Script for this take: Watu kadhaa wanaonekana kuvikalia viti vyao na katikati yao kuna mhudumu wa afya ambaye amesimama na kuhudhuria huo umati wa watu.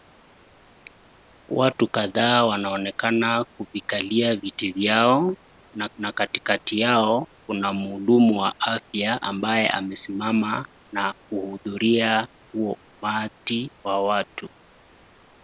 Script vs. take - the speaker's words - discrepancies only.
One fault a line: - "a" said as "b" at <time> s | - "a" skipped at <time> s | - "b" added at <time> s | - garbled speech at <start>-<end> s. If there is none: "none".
- "na" added at 6.0 s